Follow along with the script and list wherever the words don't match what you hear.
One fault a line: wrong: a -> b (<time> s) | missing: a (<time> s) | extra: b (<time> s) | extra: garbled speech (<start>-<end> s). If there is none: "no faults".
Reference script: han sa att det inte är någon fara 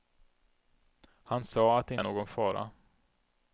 missing: inte (1.9 s)